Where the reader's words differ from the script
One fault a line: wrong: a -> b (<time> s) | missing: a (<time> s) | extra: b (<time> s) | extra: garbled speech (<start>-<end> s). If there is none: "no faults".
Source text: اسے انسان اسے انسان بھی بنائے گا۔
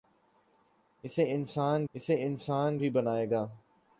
no faults